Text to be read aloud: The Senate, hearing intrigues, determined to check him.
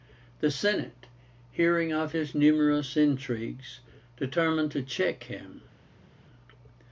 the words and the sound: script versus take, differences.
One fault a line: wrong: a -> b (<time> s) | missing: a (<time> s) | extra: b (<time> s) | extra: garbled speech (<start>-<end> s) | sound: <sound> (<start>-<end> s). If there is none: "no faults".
extra: of his numerous (1.9 s)